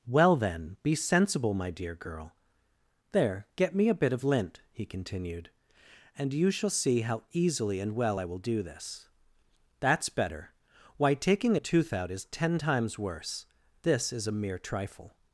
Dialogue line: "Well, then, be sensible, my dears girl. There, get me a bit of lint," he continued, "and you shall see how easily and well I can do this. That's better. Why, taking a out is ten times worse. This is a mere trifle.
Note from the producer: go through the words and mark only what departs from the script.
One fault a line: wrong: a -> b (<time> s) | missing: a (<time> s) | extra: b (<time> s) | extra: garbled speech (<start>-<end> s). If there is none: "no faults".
wrong: dears -> dear (1.7 s)
wrong: can -> will (8.2 s)
extra: tooth (11.6 s)